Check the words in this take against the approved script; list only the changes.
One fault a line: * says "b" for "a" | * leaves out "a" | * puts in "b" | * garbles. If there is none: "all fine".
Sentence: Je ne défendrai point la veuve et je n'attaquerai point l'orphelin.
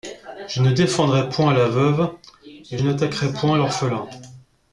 * leaves out "je"